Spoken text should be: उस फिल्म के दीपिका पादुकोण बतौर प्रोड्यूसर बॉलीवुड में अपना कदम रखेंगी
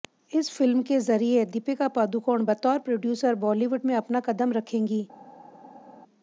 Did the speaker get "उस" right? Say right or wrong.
wrong